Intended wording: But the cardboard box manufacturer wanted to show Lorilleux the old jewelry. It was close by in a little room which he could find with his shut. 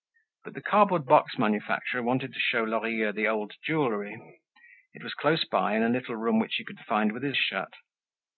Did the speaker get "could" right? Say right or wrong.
right